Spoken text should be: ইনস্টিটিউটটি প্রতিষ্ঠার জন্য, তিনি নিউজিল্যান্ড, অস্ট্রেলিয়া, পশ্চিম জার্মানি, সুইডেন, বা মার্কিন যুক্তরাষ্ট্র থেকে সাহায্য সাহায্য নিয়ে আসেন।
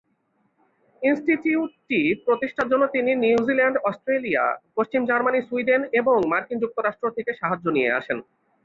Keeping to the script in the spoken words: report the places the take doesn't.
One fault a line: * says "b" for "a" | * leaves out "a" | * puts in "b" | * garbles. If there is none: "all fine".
* says "এবং" for "বা"
* leaves out "সাহায্য"